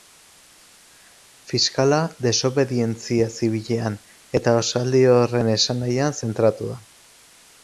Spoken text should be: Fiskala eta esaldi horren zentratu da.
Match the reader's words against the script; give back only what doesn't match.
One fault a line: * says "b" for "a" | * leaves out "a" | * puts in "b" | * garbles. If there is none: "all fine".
* puts in "desobedientzia zibilean"
* puts in "esanahian"